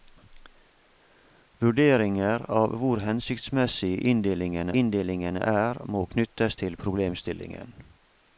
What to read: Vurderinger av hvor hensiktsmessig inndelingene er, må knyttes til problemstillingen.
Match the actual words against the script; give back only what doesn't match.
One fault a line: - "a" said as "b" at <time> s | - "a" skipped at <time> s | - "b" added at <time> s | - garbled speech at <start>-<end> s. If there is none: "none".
- "inndelingene" added at 4.8 s